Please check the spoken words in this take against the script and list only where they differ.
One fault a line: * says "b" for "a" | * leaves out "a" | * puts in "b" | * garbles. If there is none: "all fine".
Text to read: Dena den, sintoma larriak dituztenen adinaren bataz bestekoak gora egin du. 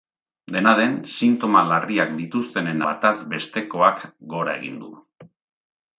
* leaves out "adinaren"